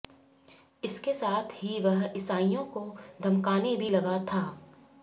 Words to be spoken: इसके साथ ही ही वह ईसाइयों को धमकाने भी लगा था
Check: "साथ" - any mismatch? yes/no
no